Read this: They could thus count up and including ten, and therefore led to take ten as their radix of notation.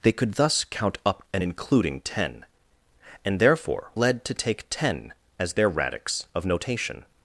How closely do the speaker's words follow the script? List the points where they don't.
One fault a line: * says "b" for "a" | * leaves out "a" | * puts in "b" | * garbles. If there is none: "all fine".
all fine